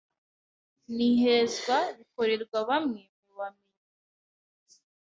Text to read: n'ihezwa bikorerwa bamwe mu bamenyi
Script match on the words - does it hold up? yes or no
yes